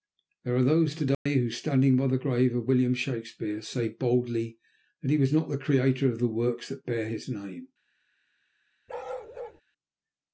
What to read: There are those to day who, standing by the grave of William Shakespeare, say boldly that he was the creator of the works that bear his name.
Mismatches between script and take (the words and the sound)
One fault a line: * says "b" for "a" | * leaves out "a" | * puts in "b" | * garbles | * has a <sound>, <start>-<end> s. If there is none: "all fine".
* has a dropout, 1.1-1.3 s
* puts in "not"
* has a bark, 8.9-9.6 s